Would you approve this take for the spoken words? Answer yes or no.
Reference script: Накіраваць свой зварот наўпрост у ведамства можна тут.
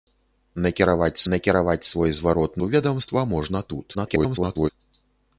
no